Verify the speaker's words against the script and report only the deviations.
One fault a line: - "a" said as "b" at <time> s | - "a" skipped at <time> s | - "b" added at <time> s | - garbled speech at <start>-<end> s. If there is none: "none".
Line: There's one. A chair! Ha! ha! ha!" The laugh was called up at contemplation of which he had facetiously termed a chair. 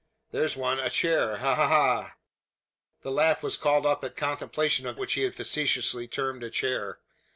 none